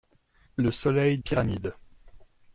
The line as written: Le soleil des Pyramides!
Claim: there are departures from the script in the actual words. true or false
true